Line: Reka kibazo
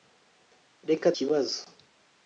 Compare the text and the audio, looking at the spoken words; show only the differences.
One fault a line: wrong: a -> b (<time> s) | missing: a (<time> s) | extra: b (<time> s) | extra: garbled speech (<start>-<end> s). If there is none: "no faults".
no faults